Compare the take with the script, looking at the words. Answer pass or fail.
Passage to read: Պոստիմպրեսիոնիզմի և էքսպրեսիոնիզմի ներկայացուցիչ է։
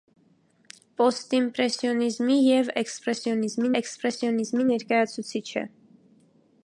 fail